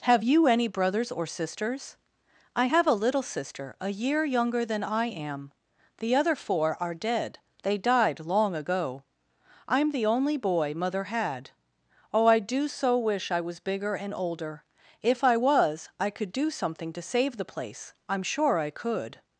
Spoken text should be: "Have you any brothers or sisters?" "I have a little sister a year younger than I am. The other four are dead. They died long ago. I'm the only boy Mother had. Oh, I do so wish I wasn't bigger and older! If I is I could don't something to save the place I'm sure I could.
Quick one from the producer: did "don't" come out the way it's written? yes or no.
no